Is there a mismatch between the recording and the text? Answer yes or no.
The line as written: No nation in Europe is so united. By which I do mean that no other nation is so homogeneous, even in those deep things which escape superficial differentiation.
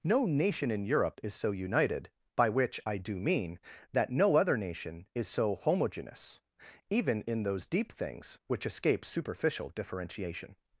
no